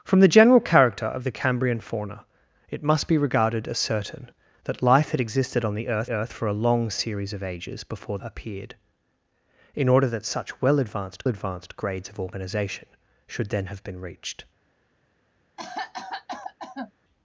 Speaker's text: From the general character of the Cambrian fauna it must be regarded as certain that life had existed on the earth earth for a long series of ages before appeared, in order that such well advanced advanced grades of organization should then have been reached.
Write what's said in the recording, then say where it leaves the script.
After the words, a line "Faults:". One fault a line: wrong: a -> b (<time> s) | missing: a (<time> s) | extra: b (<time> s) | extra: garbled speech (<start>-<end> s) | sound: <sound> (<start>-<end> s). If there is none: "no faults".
From the general character of the Cambrian fauna it must be regarded as certain that life had existed on the earth earth for a long series of ages before appeared, in order that such well advanced advanced grades of organization should then have been reached.
Faults:
sound: cough (15.6-16.9 s)